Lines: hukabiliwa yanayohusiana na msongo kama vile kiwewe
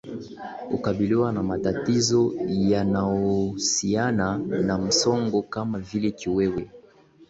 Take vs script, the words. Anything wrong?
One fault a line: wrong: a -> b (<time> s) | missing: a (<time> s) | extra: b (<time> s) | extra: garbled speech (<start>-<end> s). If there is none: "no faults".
extra: na matatizo (1.3 s)